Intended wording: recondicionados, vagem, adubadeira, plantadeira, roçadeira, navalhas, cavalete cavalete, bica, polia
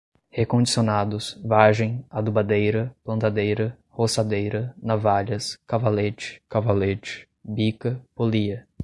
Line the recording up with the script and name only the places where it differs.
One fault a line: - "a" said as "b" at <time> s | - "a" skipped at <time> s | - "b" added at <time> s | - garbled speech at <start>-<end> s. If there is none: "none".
none